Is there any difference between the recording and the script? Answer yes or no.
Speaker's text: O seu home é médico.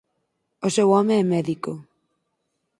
no